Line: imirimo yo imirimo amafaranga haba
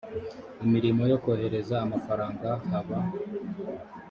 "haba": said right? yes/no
yes